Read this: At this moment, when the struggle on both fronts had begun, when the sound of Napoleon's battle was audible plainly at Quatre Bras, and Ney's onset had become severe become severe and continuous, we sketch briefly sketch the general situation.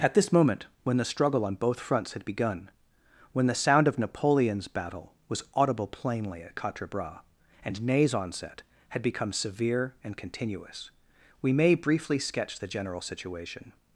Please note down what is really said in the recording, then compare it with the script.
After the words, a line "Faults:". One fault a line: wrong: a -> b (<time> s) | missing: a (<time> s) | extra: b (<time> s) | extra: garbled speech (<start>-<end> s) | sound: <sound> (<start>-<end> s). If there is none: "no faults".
At this moment, when the struggle on both fronts had begun, when the sound of Napoleon's battle was audible plainly at Quatre Bras, and Ney's onset had become severe and continuous, we may briefly sketch the general situation.
Faults:
missing: become severe (9.9 s)
wrong: sketch -> may (11.5 s)